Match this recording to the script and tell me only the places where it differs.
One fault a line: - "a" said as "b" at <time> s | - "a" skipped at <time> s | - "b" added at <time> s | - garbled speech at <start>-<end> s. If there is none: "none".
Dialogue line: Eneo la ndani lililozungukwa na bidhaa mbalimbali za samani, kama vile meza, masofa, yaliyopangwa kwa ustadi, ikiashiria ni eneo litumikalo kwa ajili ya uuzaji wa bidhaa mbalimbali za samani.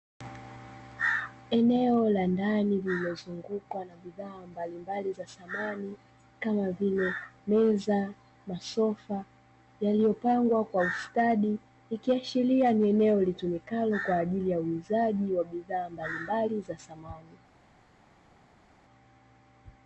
none